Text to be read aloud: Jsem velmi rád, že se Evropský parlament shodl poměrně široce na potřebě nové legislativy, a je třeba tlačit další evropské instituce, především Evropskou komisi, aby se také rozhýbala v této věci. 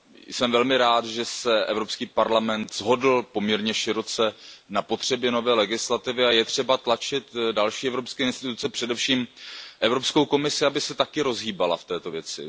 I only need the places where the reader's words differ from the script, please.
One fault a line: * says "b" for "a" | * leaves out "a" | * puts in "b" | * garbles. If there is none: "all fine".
all fine